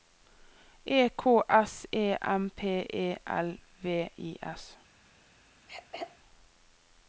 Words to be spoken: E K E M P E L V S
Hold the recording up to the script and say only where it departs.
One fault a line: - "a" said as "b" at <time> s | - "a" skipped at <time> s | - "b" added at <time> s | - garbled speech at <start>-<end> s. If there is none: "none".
- "S" added at 1.5 s
- "I" added at 4.2 s